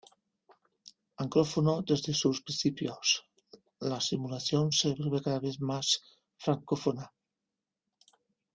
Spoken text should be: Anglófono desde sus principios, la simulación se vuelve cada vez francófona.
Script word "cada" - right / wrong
right